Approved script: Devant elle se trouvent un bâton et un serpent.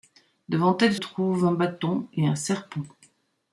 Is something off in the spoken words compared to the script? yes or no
yes